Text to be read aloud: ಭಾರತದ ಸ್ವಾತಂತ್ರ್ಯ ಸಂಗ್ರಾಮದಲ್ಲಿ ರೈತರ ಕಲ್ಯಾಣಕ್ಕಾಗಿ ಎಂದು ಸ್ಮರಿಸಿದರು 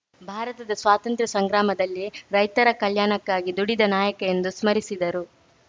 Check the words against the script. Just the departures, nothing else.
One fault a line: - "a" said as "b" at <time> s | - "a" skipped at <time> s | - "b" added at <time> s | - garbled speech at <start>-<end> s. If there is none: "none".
- "ದುಡಿದ ನಾಯಕ" added at 3.6 s